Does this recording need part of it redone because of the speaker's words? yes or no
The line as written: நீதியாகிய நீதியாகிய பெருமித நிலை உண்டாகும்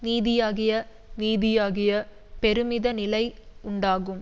no